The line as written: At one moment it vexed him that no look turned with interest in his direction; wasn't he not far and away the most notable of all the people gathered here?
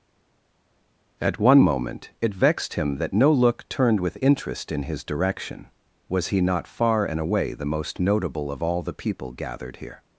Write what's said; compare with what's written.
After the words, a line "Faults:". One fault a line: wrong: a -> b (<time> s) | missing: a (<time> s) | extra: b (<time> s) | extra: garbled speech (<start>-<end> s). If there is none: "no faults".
At one moment it vexed him that no look turned with interest in his direction; was he not far and away the most notable of all the people gathered here?
Faults:
wrong: wasn't -> was (6.1 s)